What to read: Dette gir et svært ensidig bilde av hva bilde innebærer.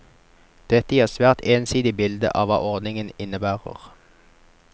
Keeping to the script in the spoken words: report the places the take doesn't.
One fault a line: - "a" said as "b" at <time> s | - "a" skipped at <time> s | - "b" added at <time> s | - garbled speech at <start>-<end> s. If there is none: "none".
- "bilde" said as "ordningen" at 2.7 s